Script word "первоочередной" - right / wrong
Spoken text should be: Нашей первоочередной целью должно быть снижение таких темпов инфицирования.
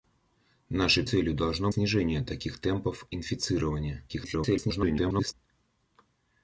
wrong